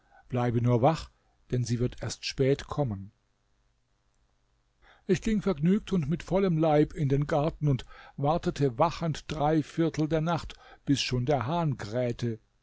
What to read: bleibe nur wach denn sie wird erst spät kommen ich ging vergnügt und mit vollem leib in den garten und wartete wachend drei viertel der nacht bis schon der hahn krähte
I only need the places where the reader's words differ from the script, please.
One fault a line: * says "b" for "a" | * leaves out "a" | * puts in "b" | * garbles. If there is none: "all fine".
all fine